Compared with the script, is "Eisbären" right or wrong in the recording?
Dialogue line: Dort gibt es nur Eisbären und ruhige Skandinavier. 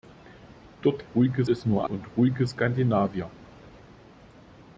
wrong